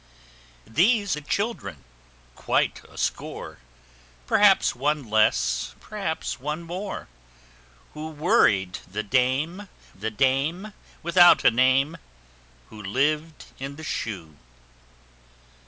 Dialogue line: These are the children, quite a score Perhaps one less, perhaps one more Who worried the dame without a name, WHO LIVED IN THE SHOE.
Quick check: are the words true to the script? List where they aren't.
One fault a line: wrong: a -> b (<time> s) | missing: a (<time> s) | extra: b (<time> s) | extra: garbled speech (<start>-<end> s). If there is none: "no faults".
missing: are (1.1 s)
extra: the dame (9.9 s)